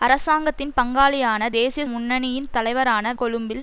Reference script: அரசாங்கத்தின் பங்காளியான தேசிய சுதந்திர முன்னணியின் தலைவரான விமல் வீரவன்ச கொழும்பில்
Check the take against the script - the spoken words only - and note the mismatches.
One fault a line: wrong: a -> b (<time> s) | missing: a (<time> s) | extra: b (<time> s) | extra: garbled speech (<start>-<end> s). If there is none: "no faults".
missing: சுதந்திர (1.8 s)
missing: விமல் வீரவன்ச (3.1 s)